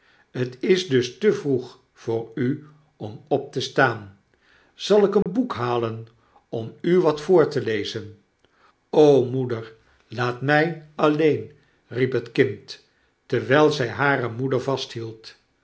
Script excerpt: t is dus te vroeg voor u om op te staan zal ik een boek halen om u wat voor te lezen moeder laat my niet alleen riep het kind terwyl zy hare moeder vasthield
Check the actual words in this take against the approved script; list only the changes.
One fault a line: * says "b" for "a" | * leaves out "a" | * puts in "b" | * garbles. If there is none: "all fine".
* leaves out "niet"